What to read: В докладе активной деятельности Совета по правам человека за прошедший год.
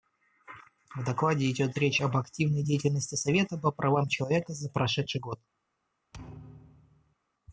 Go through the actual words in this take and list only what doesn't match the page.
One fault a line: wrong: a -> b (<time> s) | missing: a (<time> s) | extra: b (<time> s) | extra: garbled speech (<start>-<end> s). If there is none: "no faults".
extra: идет речь об (1.5 s)